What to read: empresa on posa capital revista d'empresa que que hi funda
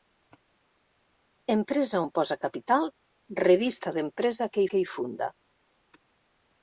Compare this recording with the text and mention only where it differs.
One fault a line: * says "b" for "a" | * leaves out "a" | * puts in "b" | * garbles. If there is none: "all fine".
all fine